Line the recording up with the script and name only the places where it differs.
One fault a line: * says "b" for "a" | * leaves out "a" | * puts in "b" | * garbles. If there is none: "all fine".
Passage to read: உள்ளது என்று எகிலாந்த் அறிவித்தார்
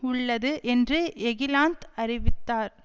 all fine